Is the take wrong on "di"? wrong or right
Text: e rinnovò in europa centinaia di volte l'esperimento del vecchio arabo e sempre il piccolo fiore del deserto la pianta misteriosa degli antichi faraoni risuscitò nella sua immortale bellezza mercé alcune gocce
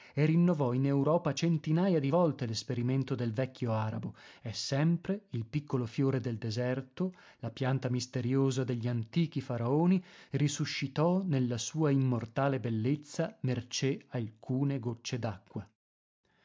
right